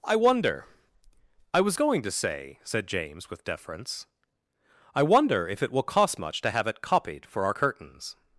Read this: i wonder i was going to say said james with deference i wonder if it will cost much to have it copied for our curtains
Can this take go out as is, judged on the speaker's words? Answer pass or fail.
pass